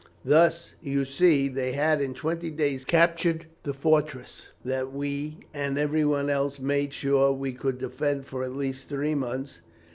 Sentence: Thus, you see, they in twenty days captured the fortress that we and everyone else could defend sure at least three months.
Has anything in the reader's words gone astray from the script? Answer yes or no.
yes